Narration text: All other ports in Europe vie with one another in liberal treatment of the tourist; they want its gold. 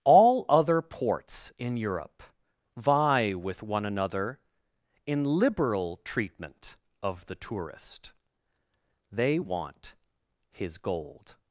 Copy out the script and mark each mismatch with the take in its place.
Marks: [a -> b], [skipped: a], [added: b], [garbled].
All other ports in Europe vie with one another in liberal treatment of the tourist; they want [its -> his] gold.